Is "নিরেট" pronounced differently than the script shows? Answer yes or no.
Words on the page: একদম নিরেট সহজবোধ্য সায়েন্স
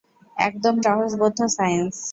yes